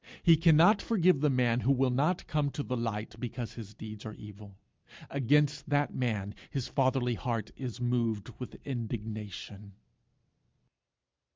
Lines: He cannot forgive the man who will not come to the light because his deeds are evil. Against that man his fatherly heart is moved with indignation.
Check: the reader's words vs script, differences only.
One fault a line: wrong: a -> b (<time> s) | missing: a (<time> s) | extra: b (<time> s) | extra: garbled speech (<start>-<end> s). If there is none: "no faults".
no faults